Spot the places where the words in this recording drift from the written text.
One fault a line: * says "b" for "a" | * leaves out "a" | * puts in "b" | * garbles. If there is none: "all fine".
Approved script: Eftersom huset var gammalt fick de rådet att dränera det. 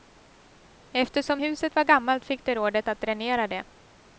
all fine